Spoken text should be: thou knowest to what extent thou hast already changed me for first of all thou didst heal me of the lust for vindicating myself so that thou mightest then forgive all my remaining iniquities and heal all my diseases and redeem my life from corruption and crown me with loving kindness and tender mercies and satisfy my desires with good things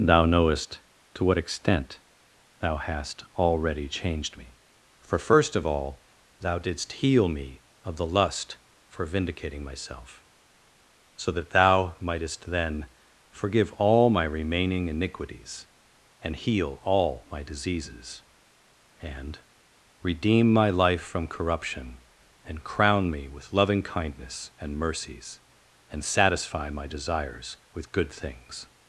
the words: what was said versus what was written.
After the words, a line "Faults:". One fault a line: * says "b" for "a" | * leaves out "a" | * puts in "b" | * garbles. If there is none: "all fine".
thou knowest to what extent thou hast already changed me for first of all thou didst heal me of the lust for vindicating myself so that thou mightest then forgive all my remaining iniquities and heal all my diseases and redeem my life from corruption and crown me with loving kindness and mercies and satisfy my desires with good things
Faults:
* leaves out "tender"